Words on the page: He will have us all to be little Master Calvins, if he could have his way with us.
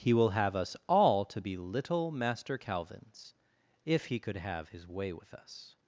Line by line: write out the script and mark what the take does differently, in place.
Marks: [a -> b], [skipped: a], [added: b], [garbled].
He will have us all to be little Master Calvins, if he could have his way with us.